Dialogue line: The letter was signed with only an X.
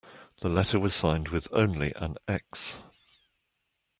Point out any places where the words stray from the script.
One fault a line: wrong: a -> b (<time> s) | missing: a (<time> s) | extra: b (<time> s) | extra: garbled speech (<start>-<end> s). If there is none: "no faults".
no faults